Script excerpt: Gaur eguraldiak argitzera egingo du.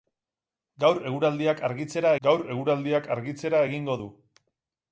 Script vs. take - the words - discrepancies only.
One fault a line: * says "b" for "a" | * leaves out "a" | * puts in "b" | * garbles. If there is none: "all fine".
* puts in "gaur eguraldiak argitzera"